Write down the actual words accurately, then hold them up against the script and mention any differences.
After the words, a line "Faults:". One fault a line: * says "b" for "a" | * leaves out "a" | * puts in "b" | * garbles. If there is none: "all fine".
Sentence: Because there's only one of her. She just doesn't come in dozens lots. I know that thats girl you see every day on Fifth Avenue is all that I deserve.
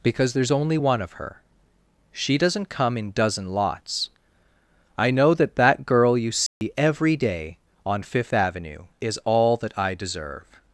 Because there's only one of her. She doesn't come in dozen lots. I know that that girl you see every day on Fifth Avenue is all that I deserve.
Faults:
* leaves out "just"
* says "dozen" for "dozens"
* says "that" for "thats"